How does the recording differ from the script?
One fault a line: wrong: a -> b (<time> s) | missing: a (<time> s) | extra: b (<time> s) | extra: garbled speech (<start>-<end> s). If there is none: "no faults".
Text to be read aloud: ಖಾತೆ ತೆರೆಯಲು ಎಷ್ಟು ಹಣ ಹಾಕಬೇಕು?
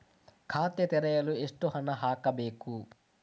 no faults